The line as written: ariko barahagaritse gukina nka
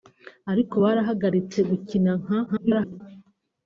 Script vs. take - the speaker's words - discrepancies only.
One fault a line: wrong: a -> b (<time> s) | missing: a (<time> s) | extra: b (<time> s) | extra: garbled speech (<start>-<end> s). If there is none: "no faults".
extra: garbled speech (2.5-3.0 s)